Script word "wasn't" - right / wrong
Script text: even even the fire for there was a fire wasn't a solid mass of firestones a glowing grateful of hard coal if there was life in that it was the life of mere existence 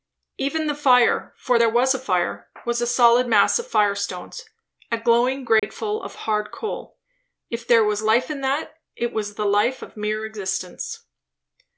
wrong